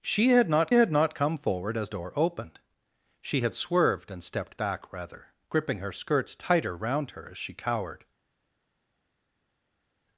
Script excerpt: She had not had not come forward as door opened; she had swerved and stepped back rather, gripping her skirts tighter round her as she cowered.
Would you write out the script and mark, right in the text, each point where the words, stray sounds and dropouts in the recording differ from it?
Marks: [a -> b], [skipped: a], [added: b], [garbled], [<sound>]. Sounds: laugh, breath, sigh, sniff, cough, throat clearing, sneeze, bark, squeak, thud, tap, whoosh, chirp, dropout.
She had not had not come forward as door opened; she had swerved and stepped back rather, gripping her skirts tighter round her as she cowered.